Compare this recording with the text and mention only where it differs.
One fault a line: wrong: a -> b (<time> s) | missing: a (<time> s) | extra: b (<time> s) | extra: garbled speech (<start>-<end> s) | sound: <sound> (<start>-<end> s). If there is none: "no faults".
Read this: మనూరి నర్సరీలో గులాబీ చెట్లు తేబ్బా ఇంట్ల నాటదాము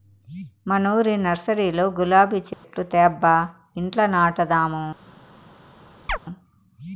sound: dropout (2.5-2.6 s)
sound: chirp (6.1-6.2 s)